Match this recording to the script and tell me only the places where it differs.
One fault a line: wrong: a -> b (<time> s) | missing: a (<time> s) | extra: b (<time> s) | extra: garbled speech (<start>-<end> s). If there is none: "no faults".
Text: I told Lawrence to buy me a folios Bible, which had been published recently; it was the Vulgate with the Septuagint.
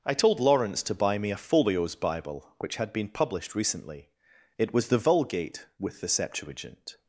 no faults